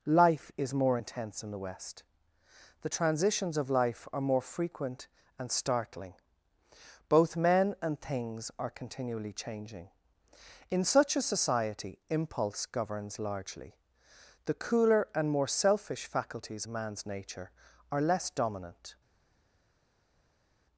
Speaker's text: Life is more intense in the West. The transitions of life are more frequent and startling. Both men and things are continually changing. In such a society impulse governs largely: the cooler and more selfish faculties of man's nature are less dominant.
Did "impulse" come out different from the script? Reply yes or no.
no